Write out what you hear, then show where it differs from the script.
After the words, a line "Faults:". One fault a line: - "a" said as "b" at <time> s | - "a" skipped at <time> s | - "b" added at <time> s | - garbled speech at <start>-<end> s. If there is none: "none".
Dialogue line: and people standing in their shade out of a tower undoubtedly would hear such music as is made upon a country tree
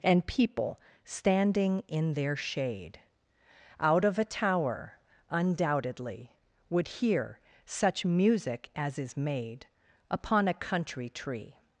and people standing in their shade out of a tower undoubtedly would hear such music as is made upon a country tree
Faults:
none